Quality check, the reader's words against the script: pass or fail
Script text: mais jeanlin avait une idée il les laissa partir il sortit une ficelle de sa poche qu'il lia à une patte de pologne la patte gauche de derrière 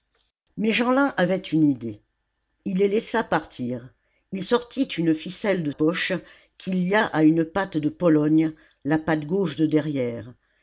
fail